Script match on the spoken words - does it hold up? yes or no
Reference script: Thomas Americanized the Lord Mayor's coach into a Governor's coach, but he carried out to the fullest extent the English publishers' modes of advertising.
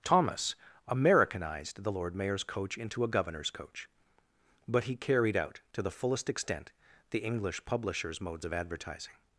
yes